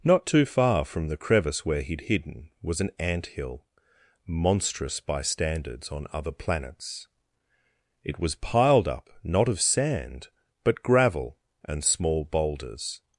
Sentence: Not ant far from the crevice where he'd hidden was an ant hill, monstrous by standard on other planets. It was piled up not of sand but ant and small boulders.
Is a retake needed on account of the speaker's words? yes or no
yes